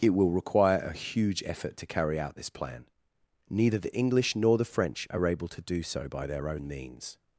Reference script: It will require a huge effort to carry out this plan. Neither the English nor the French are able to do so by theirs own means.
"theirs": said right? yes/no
no